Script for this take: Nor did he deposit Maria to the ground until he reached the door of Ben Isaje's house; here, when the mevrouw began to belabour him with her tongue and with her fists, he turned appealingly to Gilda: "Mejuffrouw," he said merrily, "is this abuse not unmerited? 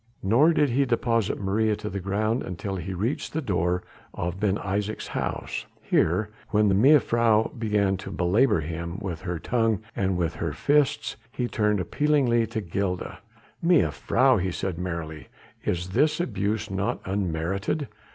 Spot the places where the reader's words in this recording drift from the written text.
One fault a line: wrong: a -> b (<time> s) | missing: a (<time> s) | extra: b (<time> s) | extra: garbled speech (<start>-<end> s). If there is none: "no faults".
no faults